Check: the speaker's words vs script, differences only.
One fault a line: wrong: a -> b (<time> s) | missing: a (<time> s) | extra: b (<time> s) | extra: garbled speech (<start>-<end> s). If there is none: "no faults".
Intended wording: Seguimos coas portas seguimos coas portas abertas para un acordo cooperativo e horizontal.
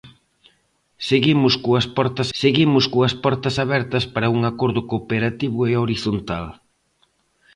no faults